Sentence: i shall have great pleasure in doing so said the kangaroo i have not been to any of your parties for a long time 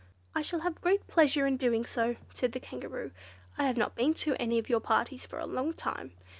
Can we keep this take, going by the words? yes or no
yes